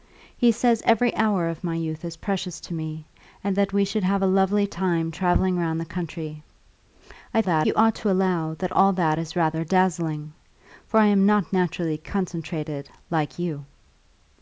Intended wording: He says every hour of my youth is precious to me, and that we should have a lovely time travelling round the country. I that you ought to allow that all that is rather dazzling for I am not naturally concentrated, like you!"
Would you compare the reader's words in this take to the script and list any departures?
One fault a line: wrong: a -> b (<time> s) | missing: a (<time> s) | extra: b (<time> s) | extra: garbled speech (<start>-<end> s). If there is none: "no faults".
no faults